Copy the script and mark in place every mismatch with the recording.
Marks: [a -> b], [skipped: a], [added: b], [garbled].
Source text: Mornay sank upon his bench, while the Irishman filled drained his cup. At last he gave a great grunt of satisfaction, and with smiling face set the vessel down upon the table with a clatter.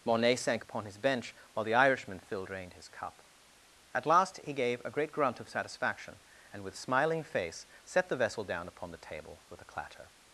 Mornay sank upon his bench, while the Irishman filled drained his cup. At last he gave a great grunt of satisfaction, and with smiling face set the vessel down upon the table with a clatter.